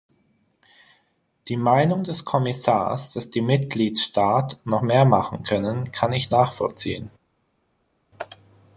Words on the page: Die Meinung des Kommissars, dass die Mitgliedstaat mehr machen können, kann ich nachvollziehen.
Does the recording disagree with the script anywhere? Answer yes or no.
yes